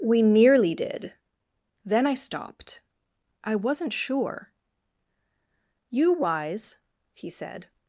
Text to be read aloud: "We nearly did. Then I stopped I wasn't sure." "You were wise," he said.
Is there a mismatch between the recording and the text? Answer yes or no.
yes